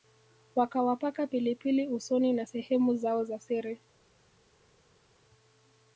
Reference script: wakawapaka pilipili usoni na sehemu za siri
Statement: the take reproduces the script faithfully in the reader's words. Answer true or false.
false